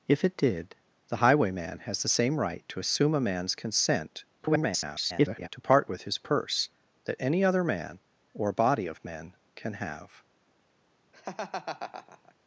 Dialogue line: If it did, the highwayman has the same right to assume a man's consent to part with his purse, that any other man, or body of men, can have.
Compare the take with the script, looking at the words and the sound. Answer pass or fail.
fail